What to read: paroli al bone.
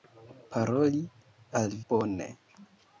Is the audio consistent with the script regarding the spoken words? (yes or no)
yes